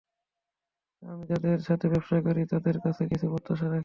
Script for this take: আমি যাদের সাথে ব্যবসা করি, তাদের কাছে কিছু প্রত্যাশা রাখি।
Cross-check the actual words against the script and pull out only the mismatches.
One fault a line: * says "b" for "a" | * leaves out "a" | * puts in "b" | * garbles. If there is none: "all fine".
all fine